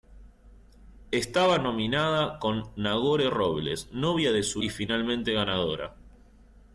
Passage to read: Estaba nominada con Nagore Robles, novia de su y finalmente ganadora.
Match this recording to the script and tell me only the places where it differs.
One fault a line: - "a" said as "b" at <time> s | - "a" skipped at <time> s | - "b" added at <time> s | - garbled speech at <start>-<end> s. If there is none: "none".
none